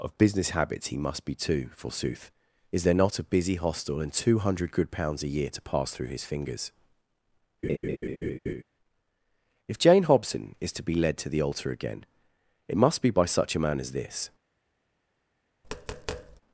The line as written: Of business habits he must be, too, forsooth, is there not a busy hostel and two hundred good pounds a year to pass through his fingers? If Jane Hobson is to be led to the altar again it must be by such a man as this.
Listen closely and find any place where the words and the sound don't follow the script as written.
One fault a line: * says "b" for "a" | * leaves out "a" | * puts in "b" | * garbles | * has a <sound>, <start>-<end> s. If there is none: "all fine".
* has a laugh, 7.6-8.6 s
* has a tap, 15.6-16.4 s